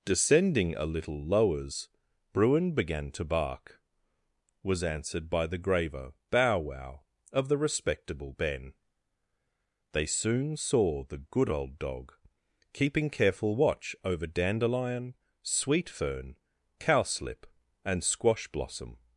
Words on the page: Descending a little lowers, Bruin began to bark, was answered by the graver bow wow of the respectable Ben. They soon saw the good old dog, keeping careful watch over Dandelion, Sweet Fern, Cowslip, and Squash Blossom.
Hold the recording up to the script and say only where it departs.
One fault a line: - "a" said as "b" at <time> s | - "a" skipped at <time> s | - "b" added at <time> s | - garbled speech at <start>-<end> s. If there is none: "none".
none